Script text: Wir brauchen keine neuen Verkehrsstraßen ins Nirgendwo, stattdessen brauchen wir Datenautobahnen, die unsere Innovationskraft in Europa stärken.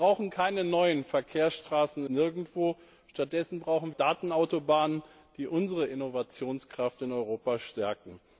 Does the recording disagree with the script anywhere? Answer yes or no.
yes